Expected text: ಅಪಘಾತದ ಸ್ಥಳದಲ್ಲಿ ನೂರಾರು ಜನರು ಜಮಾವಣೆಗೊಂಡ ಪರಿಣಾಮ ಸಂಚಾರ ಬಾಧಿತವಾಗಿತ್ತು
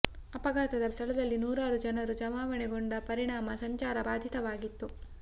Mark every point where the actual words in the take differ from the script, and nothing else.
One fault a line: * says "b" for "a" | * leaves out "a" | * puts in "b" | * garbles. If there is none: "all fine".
all fine